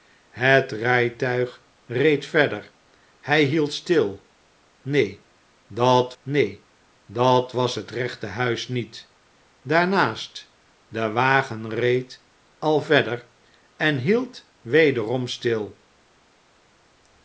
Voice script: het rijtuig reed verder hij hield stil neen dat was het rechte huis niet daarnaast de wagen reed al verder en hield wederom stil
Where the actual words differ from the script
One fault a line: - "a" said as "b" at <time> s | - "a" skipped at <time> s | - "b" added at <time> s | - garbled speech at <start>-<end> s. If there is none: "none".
- "neen dat" added at 6.2 s